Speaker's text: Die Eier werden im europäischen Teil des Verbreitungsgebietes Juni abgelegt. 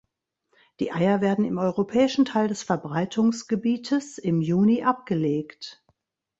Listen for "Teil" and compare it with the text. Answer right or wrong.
right